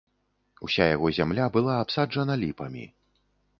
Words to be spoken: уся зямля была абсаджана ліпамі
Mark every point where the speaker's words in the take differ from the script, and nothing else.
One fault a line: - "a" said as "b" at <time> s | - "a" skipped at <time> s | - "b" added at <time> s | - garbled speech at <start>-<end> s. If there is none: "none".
- "яго" added at 0.9 s